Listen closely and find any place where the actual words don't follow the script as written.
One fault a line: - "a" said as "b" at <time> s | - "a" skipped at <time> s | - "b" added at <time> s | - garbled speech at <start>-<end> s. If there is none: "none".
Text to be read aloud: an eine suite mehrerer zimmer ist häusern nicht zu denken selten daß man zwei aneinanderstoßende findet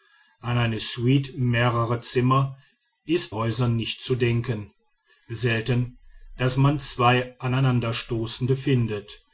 none